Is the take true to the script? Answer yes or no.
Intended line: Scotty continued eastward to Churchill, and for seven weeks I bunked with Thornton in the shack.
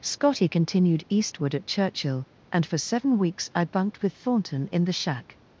no